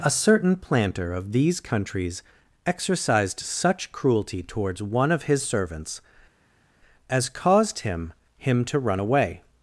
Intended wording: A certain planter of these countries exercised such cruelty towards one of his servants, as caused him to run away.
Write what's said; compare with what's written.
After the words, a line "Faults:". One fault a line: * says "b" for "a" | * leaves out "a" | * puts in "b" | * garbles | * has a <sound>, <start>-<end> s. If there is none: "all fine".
A certain planter of these countries exercised such cruelty towards one of his servants, as caused him him to run away.
Faults:
* puts in "him"